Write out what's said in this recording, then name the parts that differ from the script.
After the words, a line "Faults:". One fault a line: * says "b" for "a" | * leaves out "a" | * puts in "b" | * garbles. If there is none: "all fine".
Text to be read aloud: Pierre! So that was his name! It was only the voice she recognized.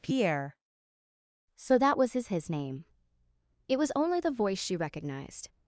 Pierre! So that was his his name! It was only the voice she recognized.
Faults:
* puts in "his"